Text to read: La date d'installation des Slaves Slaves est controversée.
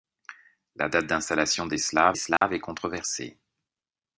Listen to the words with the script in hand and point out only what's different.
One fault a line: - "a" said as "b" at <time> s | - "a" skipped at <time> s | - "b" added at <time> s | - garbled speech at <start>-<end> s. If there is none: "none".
none